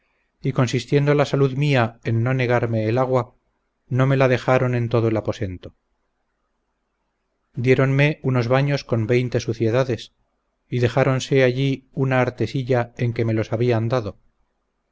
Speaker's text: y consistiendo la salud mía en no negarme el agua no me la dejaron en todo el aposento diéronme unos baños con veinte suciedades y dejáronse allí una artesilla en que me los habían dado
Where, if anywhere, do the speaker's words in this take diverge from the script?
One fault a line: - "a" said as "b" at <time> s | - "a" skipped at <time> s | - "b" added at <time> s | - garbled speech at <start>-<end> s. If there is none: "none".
none